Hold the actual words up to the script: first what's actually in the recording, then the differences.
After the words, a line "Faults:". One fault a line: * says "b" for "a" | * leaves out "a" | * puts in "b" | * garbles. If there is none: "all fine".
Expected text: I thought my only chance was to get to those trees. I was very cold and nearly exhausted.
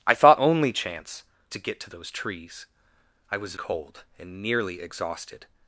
I thought only chance to get to those trees. I was cold and nearly exhausted.
Faults:
* leaves out "my"
* leaves out "was"
* leaves out "very"